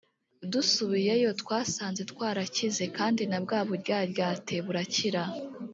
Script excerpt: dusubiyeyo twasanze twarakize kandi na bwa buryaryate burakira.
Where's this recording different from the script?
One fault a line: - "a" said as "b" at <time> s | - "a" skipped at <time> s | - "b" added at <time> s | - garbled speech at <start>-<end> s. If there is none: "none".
none